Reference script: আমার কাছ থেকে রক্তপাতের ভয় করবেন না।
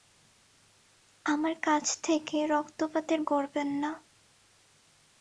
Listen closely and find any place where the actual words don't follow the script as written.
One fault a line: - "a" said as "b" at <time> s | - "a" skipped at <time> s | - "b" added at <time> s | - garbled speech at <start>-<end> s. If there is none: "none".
- "ভয়" skipped at 3.2 s